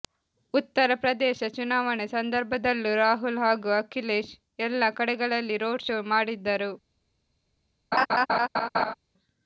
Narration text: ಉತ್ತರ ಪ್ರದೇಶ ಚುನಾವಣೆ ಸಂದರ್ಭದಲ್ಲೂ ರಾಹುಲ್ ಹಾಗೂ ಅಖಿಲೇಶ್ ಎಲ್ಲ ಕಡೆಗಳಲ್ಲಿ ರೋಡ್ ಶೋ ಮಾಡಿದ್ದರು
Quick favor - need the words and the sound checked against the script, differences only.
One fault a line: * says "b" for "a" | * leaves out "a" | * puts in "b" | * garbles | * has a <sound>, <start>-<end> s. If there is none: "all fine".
* has a laugh, 7.9-8.9 s